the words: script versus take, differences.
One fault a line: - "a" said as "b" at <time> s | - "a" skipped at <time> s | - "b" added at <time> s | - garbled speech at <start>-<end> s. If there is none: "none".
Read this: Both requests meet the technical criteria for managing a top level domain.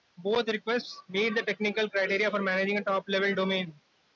none